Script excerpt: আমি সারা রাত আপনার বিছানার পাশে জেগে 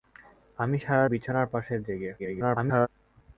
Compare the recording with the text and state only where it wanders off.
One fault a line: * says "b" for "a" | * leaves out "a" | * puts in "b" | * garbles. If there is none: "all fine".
* leaves out "রাত আপনার"
* garbles